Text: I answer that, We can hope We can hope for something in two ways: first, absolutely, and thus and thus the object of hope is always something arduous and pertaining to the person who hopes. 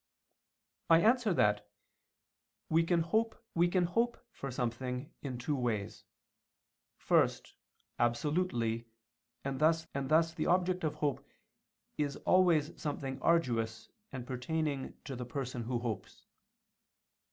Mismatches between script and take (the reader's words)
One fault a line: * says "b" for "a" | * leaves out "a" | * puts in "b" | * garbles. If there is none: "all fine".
all fine